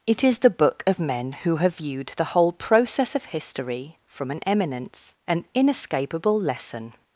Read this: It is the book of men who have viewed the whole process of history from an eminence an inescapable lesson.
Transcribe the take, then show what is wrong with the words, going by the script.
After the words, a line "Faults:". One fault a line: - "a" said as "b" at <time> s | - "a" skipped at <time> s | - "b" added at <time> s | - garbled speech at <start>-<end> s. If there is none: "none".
It is the book of men who have viewed the whole process of history from an eminence an inescapable lesson.
Faults:
none